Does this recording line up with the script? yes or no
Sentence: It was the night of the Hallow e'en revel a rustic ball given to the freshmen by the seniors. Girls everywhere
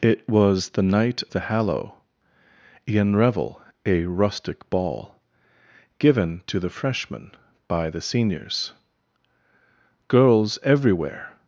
no